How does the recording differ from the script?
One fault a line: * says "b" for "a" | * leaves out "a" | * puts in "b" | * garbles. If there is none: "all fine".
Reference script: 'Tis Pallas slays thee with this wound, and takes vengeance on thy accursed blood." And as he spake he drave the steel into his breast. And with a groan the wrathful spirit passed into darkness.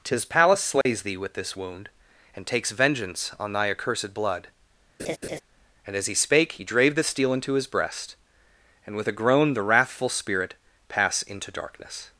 * says "pass" for "passed"